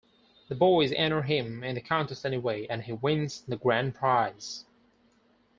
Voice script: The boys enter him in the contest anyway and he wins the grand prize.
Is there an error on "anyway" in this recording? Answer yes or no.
no